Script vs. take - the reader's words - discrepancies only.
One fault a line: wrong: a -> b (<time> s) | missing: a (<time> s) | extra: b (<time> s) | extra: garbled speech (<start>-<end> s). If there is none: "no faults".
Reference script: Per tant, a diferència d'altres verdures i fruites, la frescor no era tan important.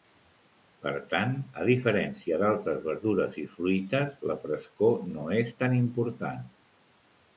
wrong: era -> és (5.4 s)